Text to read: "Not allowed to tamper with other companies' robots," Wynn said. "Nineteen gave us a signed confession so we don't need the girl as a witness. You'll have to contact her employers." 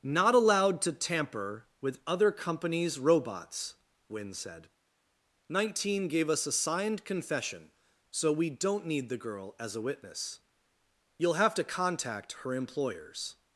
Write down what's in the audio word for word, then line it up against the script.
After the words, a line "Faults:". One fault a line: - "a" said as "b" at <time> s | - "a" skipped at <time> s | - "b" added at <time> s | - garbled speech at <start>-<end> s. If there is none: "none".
"Not allowed to tamper with other companies' robots," Wynn said. "Nineteen gave us a signed confession so we don't need the girl as a witness. You'll have to contact her employers."
Faults:
none